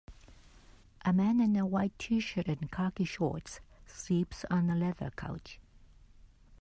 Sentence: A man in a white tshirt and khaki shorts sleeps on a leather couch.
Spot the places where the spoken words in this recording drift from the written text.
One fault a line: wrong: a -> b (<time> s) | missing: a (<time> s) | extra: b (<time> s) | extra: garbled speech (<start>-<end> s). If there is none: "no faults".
no faults